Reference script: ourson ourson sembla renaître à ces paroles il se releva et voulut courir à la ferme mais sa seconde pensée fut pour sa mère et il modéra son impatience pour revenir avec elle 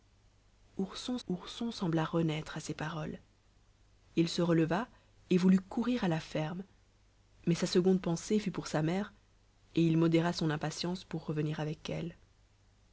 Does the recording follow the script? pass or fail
pass